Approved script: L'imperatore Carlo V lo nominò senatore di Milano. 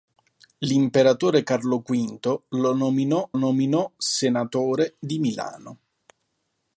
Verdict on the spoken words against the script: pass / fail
fail